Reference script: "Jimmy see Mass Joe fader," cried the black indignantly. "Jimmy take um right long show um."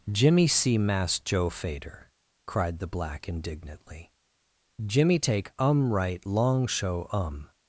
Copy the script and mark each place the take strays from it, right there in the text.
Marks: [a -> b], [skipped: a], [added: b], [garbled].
"Jimmy see Mass Joe fader," cried the black indignantly. "Jimmy take um right long show um."